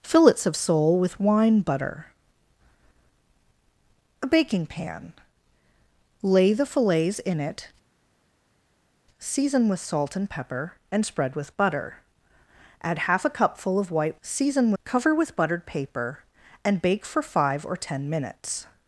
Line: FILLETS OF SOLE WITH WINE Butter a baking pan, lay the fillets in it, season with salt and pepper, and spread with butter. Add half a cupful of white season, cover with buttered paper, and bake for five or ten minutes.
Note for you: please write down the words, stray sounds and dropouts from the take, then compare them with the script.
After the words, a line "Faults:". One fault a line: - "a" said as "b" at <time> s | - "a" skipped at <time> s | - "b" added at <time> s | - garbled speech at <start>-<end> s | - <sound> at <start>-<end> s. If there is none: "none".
FILLETS OF SOLE WITH WINE Butter a baking pan, lay the fillets in it, season with salt and pepper, and spread with butter. Add half a cupful of white season, cover with buttered paper, and bake for five or ten minutes.
Faults:
none